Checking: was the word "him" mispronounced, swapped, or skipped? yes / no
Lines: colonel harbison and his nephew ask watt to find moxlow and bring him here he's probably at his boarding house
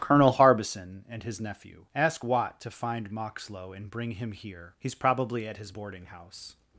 no